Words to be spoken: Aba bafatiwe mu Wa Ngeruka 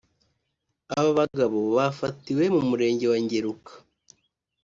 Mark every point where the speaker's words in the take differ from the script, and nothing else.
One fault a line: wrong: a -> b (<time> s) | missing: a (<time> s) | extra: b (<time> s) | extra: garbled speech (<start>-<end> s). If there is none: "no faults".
extra: bagabo (1.2 s)
extra: Murenge (2.7 s)